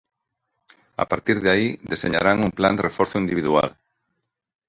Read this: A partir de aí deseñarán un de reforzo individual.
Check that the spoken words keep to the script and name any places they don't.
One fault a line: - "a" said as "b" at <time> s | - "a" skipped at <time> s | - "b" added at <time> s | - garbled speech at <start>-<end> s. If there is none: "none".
- "plan" added at 2.6 s